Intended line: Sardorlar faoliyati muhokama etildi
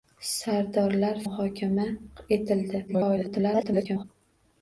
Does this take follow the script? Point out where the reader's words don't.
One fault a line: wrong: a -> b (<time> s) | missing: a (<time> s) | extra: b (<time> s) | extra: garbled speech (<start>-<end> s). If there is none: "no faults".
missing: faoliyati (1.2 s)
extra: garbled speech (2.9-4.0 s)